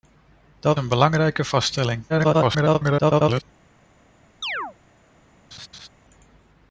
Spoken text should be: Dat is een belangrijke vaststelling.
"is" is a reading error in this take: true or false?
true